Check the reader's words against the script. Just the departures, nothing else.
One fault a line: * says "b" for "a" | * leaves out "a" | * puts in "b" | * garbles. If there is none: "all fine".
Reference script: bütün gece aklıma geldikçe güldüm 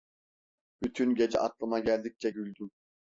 all fine